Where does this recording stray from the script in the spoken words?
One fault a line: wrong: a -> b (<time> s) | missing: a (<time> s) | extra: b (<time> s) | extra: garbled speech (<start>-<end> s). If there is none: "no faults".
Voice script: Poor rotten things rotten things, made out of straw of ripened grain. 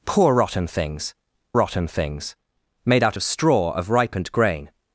no faults